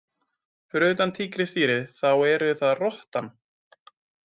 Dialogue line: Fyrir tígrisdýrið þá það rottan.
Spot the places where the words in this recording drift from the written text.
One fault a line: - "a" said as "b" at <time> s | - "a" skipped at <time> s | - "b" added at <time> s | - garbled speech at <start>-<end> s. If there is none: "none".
- "utan" added at 0.9 s
- "eru" added at 2.3 s